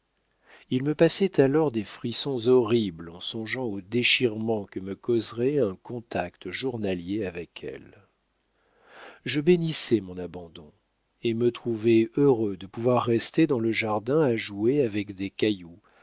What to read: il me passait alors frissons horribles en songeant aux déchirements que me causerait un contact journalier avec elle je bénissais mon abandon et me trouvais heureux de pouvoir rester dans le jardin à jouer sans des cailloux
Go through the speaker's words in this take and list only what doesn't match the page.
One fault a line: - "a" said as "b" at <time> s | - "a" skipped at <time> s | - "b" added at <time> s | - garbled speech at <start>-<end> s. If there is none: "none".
- "des" added at 1.7 s
- "sans" said as "avec" at 14.8 s